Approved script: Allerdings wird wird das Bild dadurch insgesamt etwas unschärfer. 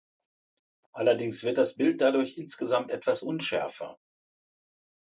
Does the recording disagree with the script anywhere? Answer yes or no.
yes